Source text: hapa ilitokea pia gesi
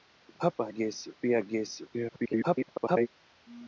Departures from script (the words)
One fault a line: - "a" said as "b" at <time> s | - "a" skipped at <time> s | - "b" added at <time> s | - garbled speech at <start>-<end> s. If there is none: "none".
- "ilitokea" said as "gesi" at 0.7 s
- garbled speech at 1.9-3.1 s